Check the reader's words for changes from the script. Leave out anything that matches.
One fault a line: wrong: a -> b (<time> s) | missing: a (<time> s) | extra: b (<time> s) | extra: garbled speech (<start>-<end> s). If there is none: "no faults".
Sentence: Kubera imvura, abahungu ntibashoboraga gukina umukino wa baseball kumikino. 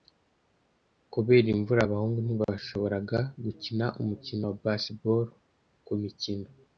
no faults